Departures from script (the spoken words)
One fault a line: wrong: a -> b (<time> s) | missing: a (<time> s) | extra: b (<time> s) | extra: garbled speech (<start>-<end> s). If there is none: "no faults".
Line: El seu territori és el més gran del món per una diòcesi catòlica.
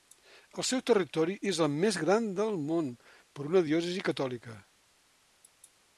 no faults